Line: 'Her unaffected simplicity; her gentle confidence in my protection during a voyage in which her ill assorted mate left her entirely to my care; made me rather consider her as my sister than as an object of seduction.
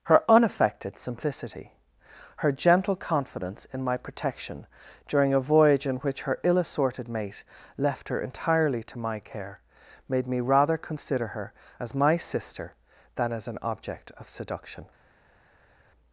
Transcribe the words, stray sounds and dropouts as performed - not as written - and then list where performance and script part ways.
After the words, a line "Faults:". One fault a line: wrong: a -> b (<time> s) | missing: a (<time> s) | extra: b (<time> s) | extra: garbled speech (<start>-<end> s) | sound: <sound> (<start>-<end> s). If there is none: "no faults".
'Her unaffected simplicity; her gentle confidence in my protection during a voyage in which her ill assorted mate left her entirely to my care; made me rather consider her as my sister than as an object of seduction.
Faults:
no faults